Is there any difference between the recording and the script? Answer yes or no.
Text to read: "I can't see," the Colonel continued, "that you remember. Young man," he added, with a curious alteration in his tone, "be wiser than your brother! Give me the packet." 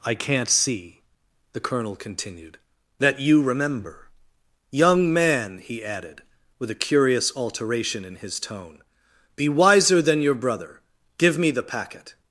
no